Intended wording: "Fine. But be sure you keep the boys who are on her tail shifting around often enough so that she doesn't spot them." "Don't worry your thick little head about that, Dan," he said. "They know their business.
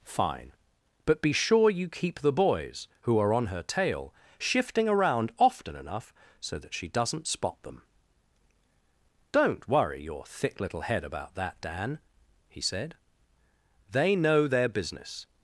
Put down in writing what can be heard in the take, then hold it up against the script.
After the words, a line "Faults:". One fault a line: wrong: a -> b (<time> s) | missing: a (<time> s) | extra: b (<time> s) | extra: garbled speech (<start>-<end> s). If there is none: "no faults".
"Fine. But be sure you keep the boys who are on her tail shifting around often enough so that she doesn't spot them." "Don't worry your thick little head about that, Dan," he said. "They know their business.
Faults:
no faults